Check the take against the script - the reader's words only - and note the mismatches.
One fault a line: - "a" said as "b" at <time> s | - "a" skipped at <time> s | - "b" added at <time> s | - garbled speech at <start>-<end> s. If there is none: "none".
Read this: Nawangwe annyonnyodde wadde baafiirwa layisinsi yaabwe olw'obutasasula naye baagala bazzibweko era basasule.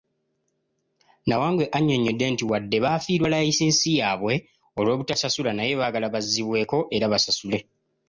- "nti" added at 2.3 s